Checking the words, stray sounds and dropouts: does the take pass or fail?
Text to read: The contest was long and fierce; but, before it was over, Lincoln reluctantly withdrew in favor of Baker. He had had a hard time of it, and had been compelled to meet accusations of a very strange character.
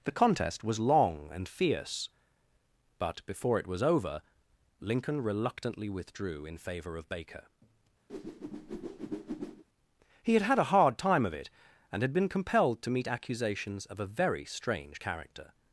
fail